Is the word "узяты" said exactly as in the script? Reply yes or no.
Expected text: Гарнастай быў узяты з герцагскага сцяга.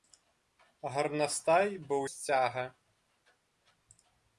no